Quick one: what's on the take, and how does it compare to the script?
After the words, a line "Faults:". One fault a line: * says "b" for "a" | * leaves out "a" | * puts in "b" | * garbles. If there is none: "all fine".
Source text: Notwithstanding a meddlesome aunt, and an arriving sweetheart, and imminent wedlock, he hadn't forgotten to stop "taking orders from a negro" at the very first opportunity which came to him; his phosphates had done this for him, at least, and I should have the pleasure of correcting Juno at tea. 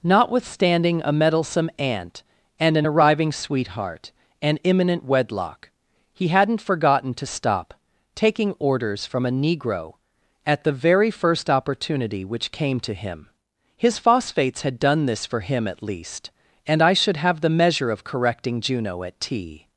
Notwithstanding a meddlesome aunt, and an arriving sweetheart, and imminent wedlock, he hadn't forgotten to stop "taking orders from a negro" at the very first opportunity which came to him; his phosphates had done this for him, at least, and I should have the measure of correcting Juno at tea.
Faults:
* says "measure" for "pleasure"